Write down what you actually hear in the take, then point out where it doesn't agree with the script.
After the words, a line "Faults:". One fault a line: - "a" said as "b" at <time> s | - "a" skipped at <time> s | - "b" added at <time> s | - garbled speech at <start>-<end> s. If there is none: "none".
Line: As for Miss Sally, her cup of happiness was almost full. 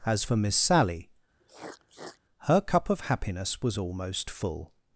As for Miss Sally, her cup of happiness was almost full.
Faults:
none